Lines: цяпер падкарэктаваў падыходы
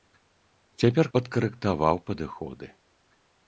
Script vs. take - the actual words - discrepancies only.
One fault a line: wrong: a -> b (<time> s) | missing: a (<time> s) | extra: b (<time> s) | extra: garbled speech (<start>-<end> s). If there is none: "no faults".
no faults